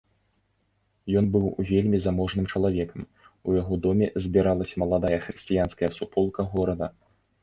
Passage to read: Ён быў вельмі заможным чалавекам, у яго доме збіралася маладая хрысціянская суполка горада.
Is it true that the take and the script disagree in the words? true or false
false